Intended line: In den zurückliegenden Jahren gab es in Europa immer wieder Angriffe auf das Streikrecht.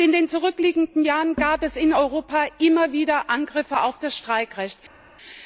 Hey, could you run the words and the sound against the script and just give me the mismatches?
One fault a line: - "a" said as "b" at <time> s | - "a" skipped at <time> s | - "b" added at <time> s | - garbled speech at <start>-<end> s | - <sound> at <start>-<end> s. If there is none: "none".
none